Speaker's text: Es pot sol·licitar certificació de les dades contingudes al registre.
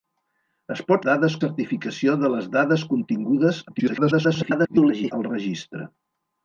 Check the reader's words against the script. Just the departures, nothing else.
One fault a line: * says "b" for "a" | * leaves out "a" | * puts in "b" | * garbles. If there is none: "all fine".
* says "dades" for "sol·licitar"
* garbles